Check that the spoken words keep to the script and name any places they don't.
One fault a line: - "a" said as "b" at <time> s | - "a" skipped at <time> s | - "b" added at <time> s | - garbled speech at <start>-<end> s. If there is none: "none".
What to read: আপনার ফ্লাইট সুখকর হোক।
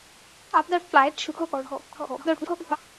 - garbled speech at 1.9-2.8 s